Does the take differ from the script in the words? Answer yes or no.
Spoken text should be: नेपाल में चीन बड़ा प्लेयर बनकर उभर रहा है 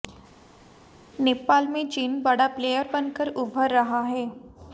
no